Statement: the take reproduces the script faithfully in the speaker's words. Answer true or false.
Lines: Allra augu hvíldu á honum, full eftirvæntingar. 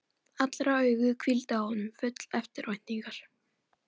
true